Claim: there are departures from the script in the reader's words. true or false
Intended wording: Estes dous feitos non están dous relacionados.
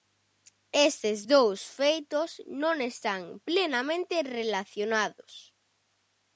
true